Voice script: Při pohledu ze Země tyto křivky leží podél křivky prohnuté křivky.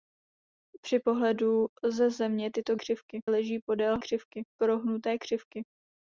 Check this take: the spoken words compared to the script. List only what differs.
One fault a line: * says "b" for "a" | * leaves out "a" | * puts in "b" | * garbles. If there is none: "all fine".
all fine